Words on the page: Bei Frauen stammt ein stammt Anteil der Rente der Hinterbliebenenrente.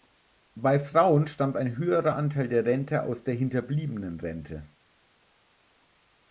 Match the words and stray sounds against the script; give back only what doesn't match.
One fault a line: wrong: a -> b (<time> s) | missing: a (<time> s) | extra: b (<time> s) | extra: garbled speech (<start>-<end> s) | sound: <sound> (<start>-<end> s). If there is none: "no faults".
wrong: stammt -> höherer (1.8 s)
extra: aus (3.0 s)